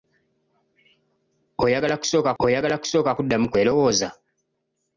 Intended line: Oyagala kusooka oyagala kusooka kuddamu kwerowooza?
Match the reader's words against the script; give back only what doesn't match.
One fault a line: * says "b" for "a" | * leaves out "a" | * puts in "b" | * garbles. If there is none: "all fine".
all fine